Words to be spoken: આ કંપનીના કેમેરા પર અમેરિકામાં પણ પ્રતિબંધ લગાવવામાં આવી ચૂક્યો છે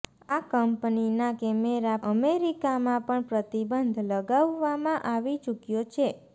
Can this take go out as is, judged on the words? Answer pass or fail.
fail